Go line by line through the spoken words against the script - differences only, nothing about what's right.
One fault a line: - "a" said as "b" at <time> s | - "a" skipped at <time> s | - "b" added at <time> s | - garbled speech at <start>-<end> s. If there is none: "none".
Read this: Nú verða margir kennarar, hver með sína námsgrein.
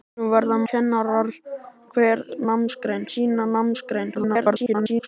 - "margir" skipped at 0.6 s
- "með" said as "námsgrein" at 2.5 s
- garbled speech at 4.1-5.1 s